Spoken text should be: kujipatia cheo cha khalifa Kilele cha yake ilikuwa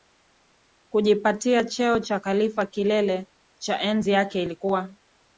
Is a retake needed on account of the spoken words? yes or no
yes